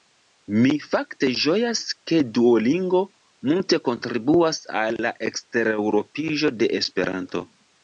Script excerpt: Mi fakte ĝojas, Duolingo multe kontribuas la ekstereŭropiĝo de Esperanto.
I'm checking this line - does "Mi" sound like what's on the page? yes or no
yes